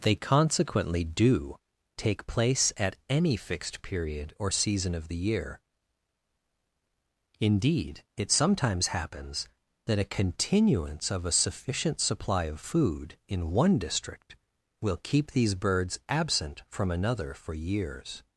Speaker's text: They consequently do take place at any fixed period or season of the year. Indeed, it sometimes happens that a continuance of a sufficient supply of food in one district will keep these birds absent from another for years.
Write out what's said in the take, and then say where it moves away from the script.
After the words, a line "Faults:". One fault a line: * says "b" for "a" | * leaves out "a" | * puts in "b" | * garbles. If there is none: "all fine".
They consequently do take place at any fixed period or season of the year. Indeed, it sometimes happens that a continuance of a sufficient supply of food in one district will keep these birds absent from another for years.
Faults:
all fine